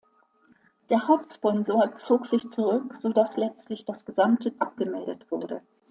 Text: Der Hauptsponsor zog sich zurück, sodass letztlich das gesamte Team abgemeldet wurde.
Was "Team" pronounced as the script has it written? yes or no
no